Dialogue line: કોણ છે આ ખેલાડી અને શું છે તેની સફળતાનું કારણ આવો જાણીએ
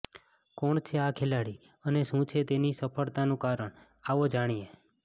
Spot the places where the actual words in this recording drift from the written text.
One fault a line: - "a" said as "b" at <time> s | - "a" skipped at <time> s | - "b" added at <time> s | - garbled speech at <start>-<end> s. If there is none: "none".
none